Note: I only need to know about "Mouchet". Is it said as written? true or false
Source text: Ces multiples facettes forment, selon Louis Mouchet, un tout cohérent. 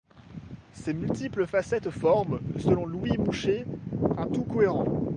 true